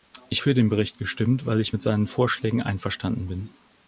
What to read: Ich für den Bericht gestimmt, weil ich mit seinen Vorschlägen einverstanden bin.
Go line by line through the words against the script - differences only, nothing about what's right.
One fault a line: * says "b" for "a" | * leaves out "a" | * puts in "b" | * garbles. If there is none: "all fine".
all fine